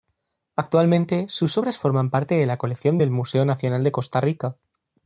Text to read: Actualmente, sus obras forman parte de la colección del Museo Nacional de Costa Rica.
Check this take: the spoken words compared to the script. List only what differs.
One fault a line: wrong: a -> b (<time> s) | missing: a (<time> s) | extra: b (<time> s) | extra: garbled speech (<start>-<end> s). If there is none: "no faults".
no faults